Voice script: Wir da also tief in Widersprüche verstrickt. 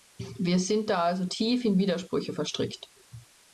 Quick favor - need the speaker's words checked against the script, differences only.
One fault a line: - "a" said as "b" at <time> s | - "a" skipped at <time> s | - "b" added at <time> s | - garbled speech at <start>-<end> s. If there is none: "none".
- "sind" added at 0.6 s